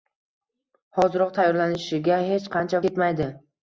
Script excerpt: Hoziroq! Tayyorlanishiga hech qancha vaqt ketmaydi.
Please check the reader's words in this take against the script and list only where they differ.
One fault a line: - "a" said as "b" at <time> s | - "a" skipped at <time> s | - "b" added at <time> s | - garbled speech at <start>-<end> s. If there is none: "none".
- "vaqt" skipped at 2.8 s